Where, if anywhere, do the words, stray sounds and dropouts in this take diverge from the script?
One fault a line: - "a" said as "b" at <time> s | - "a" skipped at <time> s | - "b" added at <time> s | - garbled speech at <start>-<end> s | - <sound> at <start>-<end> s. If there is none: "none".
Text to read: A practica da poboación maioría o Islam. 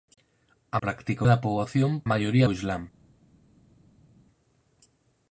none